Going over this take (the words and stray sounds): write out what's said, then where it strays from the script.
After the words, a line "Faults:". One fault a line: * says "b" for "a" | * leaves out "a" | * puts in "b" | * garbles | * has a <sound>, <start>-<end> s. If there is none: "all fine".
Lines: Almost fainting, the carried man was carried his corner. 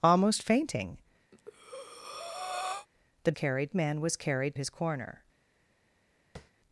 Almost fainting, the carried man was carried his corner.
Faults:
* has a breath, 1.3-2.9 s
* has a tap, 6.4-6.5 s